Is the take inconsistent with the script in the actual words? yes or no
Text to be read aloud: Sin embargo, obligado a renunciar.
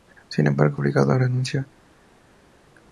no